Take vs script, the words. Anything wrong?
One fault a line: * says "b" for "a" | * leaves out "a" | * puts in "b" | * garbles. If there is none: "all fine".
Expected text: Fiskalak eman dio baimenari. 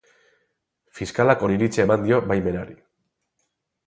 * puts in "oniritzia"